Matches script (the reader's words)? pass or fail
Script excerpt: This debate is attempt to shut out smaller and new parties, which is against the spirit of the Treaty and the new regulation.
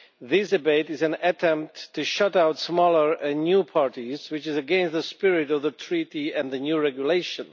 fail